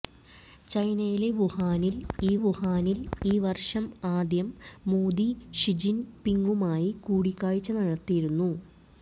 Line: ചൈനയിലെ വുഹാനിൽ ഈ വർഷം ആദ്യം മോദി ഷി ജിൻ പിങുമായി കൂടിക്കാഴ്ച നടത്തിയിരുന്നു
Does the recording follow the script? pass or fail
fail